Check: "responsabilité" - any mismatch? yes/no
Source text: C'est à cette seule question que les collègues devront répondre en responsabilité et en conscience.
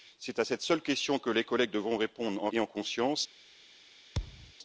yes